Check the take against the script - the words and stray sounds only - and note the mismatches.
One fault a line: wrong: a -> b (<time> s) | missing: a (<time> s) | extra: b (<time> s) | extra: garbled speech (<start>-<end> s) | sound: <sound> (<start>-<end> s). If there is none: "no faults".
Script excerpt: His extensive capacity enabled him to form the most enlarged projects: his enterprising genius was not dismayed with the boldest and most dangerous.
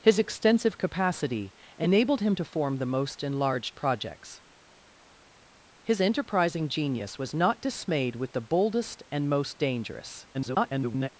extra: garbled speech (10.3-11.1 s)